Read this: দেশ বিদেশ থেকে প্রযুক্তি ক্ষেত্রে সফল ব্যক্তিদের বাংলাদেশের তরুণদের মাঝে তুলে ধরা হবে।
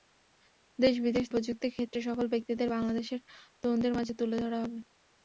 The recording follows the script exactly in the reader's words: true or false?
false